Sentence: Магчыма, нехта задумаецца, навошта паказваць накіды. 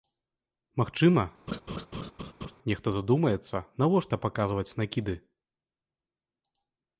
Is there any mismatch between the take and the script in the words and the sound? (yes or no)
yes